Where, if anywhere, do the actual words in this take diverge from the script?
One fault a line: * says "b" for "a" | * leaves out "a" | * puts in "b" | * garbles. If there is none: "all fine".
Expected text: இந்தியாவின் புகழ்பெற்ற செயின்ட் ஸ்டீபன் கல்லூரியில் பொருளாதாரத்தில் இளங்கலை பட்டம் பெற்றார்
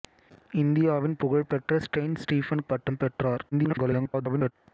* leaves out "கல்லூரியில் பொருளாதாரத்தில் இளங்கலை"
* garbles